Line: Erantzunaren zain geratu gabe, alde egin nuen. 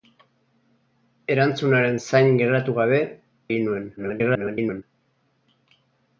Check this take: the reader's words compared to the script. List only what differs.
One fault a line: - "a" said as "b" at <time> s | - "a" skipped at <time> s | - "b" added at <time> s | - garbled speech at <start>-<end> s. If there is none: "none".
- "alde" skipped at 3.0 s
- garbled speech at 4.0-4.8 s